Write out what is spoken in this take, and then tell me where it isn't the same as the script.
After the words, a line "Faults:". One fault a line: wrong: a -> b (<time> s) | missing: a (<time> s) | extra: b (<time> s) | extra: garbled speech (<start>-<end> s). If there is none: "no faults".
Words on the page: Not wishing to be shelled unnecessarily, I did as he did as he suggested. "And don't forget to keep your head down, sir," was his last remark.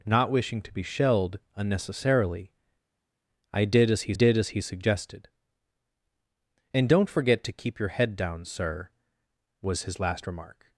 Not wishing to be shelled unnecessarily, I did as he did as he suggested. "And don't forget to keep your head down, sir," was his last remark.
Faults:
no faults